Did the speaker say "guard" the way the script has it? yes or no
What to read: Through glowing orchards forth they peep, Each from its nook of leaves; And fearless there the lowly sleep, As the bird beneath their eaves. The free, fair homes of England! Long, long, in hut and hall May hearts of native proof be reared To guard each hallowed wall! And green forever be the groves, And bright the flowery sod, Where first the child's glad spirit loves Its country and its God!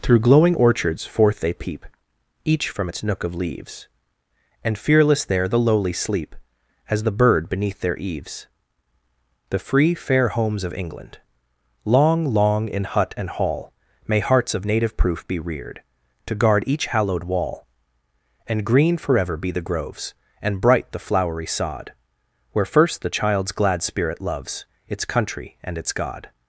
yes